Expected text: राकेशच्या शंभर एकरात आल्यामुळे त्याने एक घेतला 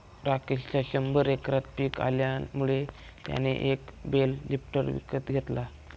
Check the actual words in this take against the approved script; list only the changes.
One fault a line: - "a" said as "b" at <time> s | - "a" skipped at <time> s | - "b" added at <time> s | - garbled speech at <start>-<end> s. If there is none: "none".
- "पिक" added at 1.8 s
- "बेल लिफ्टर विकत" added at 4.0 s